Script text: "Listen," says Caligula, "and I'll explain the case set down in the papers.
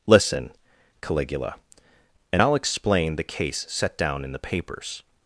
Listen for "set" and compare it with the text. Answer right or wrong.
right